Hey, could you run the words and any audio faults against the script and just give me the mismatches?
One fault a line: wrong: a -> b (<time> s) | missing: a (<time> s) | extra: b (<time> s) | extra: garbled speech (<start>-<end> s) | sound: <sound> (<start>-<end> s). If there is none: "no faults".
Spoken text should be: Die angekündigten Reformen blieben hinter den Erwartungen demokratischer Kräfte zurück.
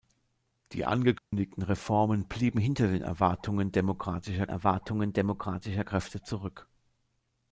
sound: dropout (1.2-1.3 s)
extra: Erwartungen demokratischer (4.5 s)